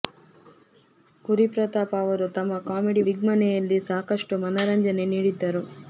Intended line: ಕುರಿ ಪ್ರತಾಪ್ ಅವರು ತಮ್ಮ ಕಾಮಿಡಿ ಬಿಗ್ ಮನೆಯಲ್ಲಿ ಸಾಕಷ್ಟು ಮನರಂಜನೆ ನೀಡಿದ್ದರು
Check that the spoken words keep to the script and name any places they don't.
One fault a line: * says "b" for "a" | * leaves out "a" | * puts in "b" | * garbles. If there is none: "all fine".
all fine